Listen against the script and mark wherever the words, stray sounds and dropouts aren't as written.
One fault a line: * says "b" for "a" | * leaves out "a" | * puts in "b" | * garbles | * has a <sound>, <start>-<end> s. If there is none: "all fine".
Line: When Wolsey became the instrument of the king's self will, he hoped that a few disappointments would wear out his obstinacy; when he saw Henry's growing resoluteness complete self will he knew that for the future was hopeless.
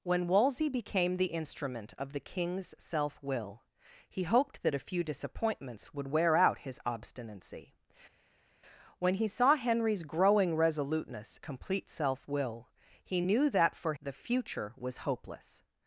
all fine